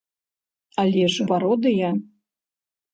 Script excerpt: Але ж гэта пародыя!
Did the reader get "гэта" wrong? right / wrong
wrong